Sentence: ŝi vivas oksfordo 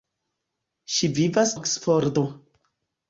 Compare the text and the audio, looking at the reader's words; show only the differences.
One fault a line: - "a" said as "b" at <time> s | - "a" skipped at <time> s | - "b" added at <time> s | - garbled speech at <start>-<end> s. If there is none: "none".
none